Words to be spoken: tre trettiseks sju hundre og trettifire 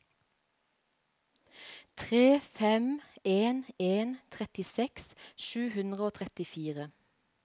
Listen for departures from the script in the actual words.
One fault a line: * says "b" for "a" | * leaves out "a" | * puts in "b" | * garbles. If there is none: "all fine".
* puts in "fem en en"